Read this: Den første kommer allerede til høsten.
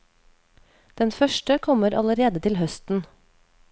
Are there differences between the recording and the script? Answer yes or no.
no